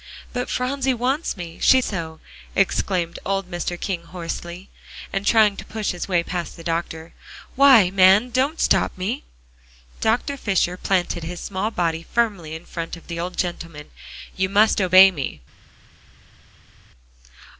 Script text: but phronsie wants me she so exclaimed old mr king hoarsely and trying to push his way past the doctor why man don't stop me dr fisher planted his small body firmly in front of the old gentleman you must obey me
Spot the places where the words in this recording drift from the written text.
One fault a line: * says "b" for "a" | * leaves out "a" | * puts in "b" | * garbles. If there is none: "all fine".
all fine